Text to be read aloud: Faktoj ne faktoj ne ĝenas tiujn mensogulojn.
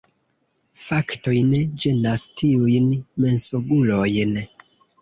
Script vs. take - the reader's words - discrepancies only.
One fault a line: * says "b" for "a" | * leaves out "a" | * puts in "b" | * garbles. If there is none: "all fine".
* leaves out "faktoj ne"